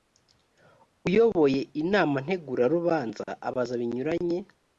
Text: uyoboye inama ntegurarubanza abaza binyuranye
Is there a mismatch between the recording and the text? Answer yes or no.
no